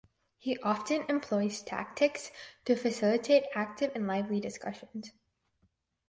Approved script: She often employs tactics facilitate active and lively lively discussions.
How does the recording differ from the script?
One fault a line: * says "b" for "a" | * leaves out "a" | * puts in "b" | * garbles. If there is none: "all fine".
* says "He" for "She"
* puts in "to"
* leaves out "lively"